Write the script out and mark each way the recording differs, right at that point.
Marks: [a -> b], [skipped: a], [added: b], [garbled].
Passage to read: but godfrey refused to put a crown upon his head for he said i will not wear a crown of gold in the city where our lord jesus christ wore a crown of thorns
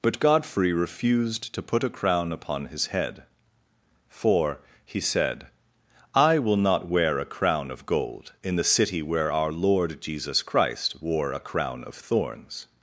but godfrey refused to put a crown upon his head for he said i will not wear a crown of gold in the city where our lord jesus christ wore a crown of thorns